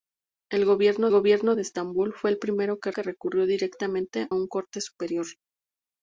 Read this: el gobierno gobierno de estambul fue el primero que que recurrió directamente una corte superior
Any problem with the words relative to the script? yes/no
no